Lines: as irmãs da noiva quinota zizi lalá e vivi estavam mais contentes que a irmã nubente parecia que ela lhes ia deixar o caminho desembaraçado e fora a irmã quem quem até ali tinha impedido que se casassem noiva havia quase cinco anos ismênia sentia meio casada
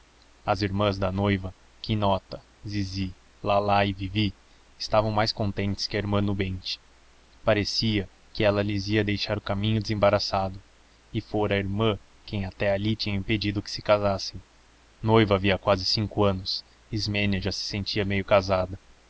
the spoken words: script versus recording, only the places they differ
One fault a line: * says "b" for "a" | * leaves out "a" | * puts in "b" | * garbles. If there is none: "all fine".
* leaves out "quem"
* puts in "já se"